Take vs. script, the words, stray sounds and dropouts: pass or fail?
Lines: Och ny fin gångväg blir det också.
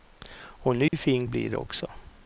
fail